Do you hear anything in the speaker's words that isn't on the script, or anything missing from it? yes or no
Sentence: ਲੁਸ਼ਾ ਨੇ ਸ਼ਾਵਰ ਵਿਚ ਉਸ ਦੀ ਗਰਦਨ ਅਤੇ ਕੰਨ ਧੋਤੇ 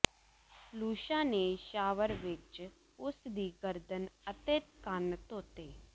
no